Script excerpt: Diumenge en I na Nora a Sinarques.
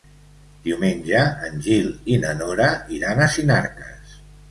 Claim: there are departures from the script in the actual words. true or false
true